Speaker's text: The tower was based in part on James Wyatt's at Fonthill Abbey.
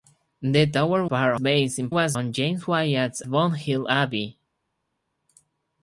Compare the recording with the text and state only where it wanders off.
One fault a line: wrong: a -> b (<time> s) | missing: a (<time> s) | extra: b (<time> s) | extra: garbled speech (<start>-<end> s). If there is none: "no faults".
wrong: was -> part (1.0 s)
wrong: part -> was (1.9 s)
missing: at (3.2 s)